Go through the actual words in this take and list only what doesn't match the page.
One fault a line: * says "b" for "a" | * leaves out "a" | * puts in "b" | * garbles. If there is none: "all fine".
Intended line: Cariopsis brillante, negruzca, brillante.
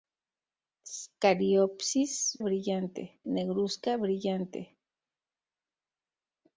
all fine